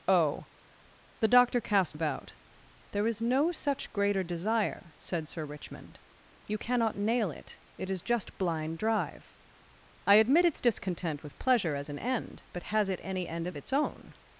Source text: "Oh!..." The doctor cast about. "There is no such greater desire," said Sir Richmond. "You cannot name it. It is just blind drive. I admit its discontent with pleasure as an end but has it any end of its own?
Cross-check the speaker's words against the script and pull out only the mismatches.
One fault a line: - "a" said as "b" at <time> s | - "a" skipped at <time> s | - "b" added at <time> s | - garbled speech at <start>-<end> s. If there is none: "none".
- "name" said as "nail" at 7.0 s